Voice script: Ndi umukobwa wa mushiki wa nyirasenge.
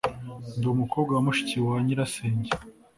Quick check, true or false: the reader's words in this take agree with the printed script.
true